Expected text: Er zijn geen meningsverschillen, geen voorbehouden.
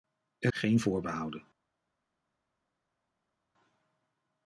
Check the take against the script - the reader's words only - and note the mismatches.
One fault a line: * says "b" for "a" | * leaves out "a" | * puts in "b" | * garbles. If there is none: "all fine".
* leaves out "zijn geen meningsverschillen"